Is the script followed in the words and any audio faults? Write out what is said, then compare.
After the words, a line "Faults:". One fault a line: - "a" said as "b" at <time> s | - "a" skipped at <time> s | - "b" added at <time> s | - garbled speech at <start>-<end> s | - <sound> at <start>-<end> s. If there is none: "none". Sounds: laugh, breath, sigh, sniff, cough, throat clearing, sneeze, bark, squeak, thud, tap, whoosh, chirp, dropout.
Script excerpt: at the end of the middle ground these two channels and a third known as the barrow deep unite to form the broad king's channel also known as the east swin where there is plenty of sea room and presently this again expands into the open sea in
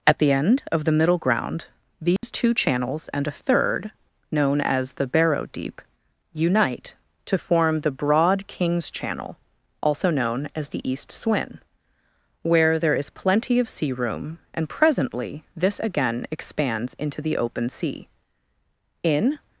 at the end of the middle ground these two channels and a third known as the barrow deep unite to form the broad king's channel also known as the east swin where there is plenty of sea room and presently this again expands into the open sea in
Faults:
- dropout at 2.2-2.2 s